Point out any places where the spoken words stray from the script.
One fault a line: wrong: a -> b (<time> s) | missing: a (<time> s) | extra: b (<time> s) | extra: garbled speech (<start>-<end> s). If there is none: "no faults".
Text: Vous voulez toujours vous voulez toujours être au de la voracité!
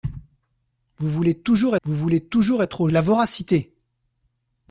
no faults